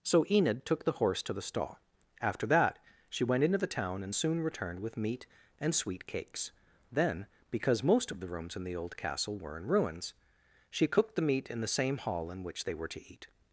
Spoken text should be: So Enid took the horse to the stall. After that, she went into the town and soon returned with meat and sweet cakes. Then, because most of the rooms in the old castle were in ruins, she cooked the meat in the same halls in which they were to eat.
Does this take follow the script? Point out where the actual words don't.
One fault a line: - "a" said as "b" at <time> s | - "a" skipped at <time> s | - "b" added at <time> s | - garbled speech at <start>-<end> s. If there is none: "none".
- "halls" said as "hall" at 12.0 s